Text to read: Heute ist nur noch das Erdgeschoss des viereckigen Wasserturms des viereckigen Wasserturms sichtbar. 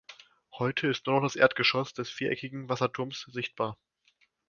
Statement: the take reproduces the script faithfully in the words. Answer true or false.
false